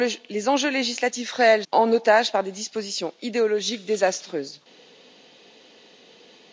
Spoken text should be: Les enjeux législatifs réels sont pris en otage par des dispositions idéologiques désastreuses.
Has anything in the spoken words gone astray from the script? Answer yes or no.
yes